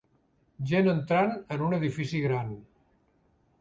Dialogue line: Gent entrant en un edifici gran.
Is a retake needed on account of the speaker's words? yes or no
no